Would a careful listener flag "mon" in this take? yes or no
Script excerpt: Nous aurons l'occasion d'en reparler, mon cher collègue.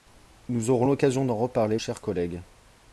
yes